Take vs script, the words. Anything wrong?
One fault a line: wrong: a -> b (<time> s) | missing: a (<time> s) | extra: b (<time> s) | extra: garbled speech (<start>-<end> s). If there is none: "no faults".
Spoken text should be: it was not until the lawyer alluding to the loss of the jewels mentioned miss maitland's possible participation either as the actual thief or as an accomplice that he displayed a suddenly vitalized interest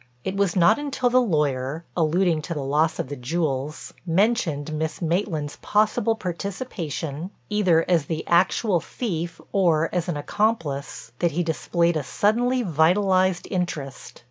no faults